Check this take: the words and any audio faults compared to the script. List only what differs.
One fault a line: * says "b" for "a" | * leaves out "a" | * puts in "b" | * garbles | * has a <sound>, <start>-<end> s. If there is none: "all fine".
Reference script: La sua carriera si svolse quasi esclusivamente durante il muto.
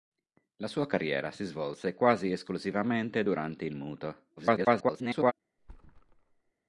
* garbles
* has a thud, 5.6-6.5 s